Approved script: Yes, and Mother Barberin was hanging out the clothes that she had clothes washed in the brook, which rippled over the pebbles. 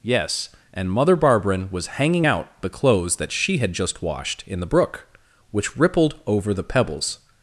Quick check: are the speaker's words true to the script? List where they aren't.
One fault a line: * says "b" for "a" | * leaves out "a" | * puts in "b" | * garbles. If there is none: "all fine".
* says "just" for "clothes"